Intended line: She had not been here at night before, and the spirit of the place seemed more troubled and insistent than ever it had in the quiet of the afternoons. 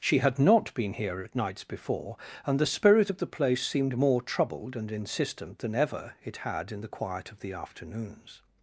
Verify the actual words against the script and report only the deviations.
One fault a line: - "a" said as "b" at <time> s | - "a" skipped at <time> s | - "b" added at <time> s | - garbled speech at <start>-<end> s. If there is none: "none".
- "night" said as "nights" at 1.4 s